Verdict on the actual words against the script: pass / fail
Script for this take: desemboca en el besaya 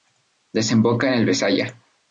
pass